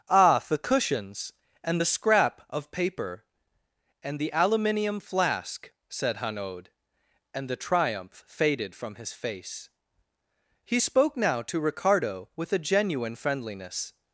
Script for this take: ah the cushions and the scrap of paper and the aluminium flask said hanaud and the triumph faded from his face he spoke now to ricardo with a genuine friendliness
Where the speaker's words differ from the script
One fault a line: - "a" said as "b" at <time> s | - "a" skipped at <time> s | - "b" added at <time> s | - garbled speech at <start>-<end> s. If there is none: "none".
none